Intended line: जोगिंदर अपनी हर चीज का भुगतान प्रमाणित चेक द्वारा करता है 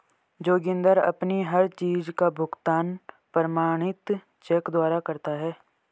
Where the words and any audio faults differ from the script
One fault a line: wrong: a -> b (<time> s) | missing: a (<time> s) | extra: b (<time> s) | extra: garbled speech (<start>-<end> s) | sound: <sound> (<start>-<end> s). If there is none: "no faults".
no faults